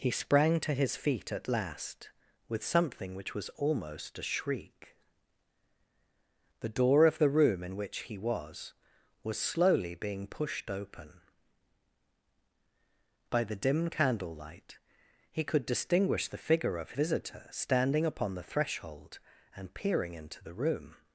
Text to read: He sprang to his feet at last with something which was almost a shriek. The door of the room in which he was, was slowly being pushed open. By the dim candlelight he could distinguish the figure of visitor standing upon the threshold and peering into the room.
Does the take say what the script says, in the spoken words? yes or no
yes